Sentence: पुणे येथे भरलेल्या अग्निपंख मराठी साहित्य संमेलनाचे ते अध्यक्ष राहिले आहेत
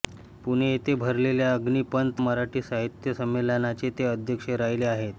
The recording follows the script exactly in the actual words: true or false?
true